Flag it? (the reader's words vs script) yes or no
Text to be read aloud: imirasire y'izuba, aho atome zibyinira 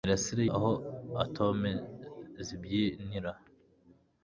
yes